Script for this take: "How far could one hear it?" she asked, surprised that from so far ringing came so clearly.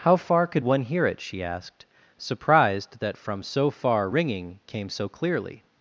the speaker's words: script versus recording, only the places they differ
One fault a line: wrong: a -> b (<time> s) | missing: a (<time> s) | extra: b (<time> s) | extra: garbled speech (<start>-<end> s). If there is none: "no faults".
no faults